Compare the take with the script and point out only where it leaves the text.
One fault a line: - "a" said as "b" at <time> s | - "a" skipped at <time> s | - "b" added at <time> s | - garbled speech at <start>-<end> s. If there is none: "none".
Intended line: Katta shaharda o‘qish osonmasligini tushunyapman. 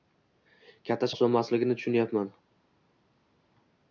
- "shaharda o‘qish" skipped at 1.1 s